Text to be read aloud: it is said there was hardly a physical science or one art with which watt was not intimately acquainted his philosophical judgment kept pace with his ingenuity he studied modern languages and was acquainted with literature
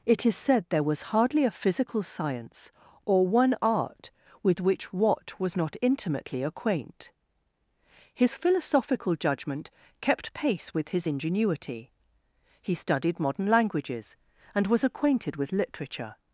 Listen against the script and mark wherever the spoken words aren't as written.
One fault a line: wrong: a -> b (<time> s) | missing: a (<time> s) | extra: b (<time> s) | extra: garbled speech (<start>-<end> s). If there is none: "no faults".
wrong: acquainted -> acquaint (6.4 s)